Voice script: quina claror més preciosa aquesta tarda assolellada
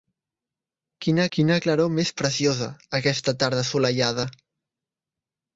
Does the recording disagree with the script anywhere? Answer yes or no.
yes